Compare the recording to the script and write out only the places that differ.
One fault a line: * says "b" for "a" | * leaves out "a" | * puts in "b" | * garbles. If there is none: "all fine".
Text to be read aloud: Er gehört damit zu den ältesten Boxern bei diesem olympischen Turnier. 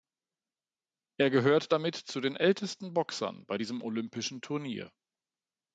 all fine